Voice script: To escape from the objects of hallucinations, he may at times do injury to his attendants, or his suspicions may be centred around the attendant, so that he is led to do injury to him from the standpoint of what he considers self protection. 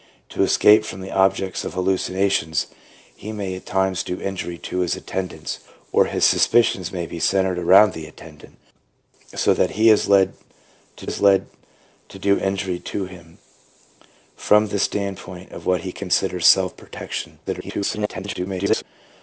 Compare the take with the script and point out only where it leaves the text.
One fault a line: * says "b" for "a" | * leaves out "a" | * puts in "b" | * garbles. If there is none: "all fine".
* puts in "is led to"
* garbles